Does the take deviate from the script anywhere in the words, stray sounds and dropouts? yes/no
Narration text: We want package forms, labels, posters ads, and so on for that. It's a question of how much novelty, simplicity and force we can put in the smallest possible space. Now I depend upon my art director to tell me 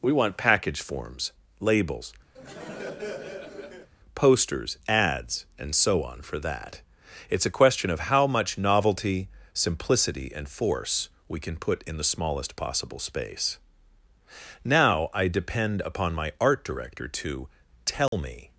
yes